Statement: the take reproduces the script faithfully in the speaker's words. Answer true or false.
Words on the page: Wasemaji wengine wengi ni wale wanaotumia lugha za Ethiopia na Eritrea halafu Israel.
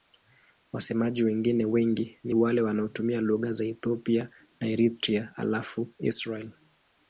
true